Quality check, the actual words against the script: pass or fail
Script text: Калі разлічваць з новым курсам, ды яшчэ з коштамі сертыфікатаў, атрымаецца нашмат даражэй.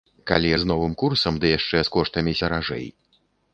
fail